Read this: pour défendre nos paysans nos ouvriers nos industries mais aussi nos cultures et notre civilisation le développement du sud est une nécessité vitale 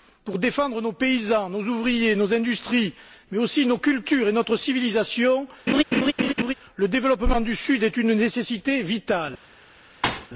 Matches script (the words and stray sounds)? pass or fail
fail